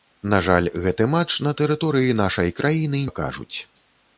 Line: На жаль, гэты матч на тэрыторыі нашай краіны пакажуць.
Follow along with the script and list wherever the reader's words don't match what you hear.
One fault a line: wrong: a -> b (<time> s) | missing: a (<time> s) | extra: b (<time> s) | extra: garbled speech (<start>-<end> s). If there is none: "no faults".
no faults